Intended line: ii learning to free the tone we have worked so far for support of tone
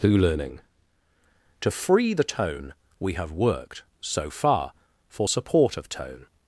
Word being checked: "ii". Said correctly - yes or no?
no